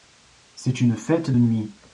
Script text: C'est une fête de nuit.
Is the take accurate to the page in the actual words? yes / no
no